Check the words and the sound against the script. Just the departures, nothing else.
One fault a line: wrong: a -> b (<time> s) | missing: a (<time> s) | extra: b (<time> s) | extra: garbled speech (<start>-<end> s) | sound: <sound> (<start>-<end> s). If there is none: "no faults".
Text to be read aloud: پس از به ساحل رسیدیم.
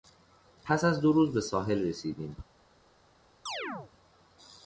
extra: دو روز (1.0 s)
sound: chirp (3.5-3.9 s)